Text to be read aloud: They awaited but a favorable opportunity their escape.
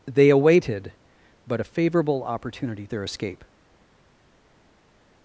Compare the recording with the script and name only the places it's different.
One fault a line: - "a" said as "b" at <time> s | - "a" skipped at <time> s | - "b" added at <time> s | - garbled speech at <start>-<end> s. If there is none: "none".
none